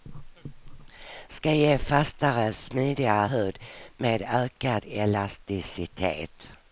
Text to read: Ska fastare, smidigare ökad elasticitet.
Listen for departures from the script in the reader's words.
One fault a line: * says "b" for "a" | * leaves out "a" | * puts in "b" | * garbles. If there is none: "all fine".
* puts in "ge"
* puts in "hud med"